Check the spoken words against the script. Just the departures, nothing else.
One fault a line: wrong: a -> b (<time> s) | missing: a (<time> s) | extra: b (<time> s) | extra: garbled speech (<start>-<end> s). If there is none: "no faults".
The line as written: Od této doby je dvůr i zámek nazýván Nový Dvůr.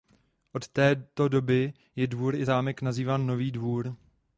no faults